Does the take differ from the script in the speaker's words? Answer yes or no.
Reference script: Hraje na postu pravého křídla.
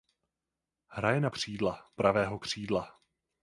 yes